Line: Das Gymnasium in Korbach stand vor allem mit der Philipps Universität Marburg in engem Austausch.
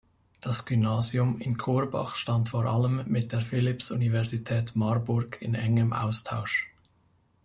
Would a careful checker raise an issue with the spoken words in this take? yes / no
no